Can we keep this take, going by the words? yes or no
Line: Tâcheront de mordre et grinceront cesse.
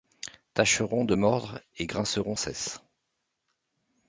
yes